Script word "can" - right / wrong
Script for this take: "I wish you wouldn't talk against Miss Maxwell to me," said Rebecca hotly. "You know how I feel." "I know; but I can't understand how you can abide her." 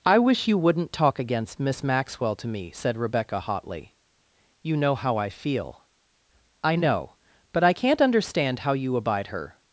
wrong